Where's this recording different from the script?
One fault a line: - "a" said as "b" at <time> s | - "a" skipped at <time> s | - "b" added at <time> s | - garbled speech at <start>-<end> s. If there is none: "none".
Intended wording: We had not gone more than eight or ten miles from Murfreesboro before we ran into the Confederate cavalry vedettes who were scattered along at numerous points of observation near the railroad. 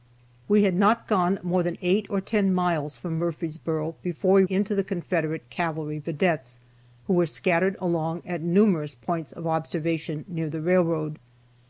- "ran" skipped at 4.4 s